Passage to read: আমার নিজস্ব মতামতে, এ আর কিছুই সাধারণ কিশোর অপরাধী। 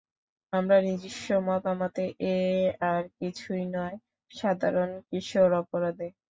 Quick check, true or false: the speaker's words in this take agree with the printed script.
false